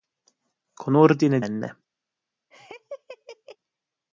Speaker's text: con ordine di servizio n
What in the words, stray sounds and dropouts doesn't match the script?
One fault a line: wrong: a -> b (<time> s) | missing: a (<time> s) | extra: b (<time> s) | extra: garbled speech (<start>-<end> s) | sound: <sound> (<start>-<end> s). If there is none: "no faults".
missing: servizio (1.5 s)
sound: laugh (2.5-3.6 s)